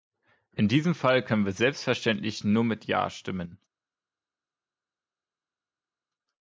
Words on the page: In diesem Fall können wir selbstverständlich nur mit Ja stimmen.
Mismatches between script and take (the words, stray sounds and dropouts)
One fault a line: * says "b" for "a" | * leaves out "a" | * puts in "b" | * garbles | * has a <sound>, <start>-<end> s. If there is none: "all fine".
all fine